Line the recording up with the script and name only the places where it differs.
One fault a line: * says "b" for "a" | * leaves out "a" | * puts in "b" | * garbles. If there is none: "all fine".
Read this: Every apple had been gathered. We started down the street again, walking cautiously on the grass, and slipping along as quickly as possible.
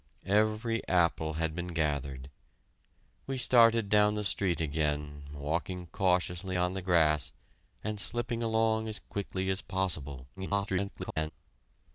* garbles